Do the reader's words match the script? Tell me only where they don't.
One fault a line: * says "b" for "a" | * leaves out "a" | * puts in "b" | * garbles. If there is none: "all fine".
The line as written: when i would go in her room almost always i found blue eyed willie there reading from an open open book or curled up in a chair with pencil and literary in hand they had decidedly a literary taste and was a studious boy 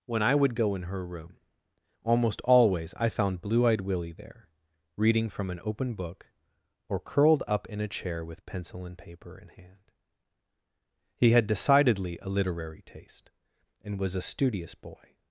* leaves out "open"
* says "paper" for "literary"
* says "he" for "they"